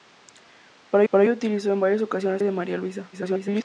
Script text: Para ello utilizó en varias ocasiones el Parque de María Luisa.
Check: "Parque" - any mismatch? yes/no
yes